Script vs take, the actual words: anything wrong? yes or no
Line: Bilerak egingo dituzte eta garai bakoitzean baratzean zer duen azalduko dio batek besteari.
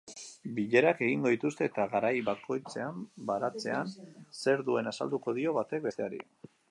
no